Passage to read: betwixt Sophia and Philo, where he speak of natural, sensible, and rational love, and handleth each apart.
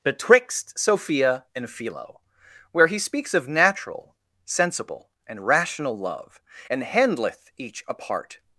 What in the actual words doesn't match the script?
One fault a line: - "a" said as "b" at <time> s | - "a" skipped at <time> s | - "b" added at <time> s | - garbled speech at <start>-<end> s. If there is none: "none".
- "speak" said as "speaks" at 3.0 s